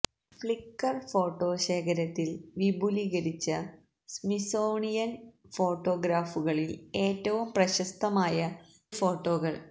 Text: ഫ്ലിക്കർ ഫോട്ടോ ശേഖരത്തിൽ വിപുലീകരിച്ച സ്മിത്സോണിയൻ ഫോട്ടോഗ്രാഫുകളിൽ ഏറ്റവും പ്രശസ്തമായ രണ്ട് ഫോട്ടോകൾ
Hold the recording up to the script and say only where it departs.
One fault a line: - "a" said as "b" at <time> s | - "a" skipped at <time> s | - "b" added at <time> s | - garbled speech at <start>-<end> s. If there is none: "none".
- "രണ്ട്" skipped at 8.4 s